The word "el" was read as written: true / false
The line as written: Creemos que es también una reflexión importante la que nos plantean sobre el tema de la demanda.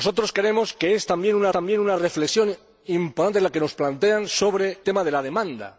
false